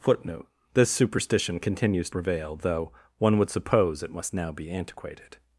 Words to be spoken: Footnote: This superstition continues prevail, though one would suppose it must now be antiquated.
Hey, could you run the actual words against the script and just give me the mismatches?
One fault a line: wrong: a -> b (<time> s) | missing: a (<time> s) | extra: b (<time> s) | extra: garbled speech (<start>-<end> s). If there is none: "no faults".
no faults